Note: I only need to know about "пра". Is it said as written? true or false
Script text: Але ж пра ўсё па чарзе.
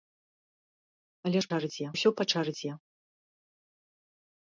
false